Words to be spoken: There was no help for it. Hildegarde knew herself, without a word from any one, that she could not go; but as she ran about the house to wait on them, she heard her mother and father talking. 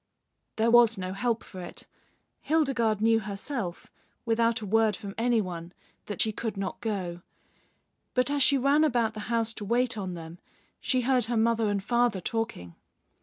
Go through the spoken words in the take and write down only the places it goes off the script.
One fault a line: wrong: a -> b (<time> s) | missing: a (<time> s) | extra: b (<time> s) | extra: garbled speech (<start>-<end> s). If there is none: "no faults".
no faults